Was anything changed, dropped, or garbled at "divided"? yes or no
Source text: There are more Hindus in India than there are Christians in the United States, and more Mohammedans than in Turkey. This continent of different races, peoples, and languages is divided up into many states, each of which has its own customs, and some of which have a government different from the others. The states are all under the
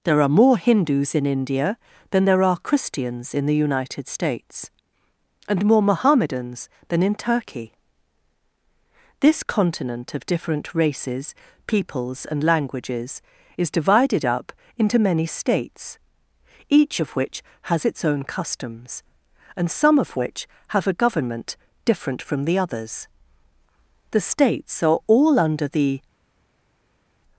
no